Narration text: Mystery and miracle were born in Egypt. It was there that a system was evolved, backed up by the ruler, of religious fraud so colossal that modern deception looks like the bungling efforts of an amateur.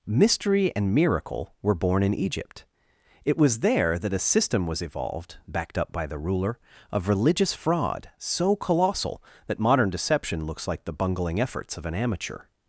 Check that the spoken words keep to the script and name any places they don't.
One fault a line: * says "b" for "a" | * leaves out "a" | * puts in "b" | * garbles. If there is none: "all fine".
all fine